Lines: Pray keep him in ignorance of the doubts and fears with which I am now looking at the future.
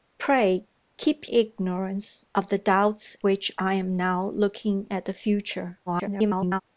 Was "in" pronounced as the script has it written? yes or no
no